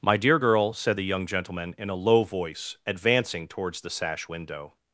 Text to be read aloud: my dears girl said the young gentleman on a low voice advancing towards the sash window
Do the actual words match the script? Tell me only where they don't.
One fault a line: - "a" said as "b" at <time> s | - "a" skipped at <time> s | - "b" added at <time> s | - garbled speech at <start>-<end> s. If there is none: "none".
- "dears" said as "dear" at 0.2 s
- "on" said as "in" at 1.8 s